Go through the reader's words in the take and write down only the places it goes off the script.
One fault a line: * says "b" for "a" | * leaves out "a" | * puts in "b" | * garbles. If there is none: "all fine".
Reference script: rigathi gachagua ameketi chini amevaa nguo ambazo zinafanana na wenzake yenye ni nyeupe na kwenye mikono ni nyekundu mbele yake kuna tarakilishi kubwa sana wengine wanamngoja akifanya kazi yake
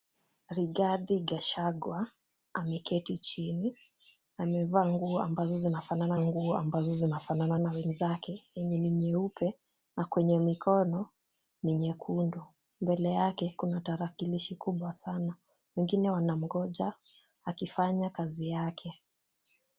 * puts in "nguo ambazo zinafanana"